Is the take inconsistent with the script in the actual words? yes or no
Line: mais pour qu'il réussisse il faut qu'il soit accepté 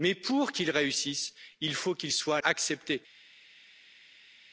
no